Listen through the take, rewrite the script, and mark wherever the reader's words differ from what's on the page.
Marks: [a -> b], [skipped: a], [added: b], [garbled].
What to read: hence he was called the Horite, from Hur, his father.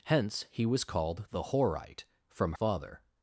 hence he was called the Horite, from [skipped: Hur, his] father.